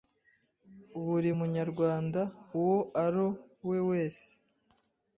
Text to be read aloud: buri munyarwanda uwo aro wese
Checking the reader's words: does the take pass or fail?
fail